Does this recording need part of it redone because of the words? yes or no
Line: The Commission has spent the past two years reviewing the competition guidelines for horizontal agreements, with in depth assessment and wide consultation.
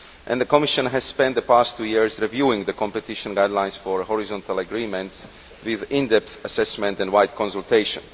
no